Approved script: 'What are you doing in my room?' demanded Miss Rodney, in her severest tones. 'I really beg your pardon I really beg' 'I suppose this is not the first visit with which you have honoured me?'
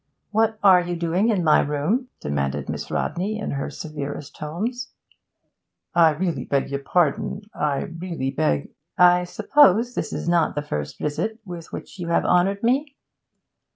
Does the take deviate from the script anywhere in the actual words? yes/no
no